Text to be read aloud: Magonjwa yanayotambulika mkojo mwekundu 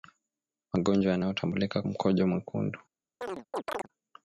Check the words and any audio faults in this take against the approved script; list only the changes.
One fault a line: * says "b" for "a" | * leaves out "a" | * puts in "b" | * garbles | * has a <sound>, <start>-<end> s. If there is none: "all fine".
* has a chirp, 3.2-3.9 s